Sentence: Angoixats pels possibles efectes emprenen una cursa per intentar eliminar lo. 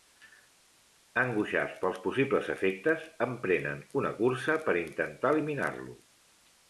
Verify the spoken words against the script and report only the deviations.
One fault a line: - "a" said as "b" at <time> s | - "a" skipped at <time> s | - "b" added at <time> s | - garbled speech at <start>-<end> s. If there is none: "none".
none